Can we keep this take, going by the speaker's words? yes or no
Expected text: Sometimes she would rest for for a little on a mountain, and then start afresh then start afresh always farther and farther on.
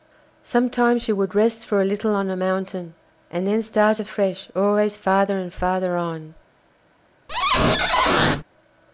no